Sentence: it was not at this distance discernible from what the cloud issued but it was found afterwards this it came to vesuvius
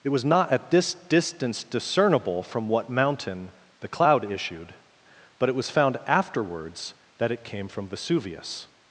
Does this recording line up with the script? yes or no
no